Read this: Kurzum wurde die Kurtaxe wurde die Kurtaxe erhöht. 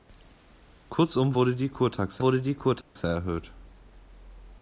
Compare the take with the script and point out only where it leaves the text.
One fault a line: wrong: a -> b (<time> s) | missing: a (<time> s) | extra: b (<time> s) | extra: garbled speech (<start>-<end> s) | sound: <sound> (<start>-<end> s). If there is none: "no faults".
sound: dropout (2.8-3.0 s)